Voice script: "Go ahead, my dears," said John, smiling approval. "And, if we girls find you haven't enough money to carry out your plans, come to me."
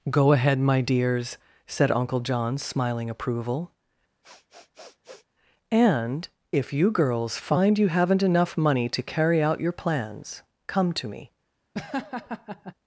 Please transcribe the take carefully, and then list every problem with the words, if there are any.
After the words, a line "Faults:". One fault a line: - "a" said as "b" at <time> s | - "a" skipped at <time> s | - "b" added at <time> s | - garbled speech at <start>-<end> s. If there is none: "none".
"Go ahead, my dears," said Uncle John, smiling approval. "And, if you girls find you haven't enough money to carry out your plans, come to me."
Faults:
- "Uncle" added at 1.9 s
- "we" said as "you" at 6.7 s